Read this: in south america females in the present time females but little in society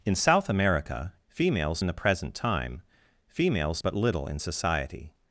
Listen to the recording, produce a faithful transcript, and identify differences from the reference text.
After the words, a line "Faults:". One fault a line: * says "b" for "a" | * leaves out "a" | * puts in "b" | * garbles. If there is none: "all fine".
in south america females in the present time females but little in society
Faults:
all fine